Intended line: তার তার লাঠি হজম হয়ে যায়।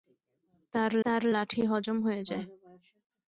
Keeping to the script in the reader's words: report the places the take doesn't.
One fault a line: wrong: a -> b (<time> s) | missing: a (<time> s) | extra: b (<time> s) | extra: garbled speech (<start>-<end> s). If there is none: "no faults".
no faults